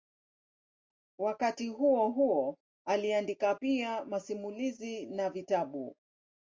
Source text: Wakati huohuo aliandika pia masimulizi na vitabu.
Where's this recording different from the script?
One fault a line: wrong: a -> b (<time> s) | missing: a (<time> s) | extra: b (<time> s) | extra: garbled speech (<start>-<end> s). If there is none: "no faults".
no faults